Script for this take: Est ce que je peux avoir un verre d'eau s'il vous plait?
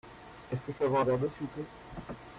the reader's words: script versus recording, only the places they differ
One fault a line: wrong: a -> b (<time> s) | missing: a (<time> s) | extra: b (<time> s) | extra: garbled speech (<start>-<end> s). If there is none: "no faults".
no faults